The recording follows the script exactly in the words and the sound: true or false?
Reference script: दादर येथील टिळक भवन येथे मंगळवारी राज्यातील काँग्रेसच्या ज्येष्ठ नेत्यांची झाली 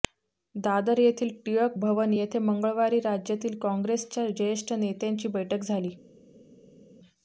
false